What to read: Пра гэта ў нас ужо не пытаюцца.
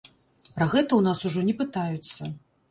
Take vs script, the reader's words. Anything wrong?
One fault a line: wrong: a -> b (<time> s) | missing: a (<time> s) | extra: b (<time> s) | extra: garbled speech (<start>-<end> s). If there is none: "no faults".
no faults